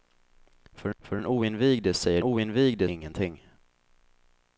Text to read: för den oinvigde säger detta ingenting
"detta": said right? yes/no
no